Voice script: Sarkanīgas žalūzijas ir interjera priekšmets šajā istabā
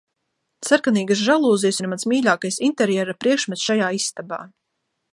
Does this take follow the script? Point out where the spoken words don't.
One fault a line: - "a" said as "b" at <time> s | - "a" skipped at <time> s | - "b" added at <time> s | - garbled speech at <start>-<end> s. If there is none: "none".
- "mans mīļākais" added at 1.9 s